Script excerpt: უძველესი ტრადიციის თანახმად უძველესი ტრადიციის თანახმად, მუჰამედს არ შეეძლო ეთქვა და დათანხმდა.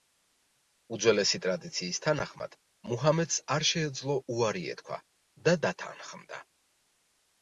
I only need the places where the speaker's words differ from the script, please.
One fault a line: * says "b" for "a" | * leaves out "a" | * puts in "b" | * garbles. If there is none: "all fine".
* leaves out "უძველესი ტრადიციის თანახმად"
* puts in "უარი"